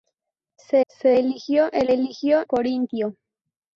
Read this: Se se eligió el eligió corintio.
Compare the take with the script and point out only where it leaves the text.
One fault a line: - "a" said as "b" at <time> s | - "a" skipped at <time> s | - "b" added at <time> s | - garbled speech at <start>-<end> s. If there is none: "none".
none